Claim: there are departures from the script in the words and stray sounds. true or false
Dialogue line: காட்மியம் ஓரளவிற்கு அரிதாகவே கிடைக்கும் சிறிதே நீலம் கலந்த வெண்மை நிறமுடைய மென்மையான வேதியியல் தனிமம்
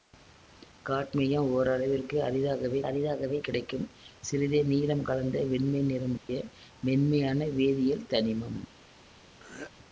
true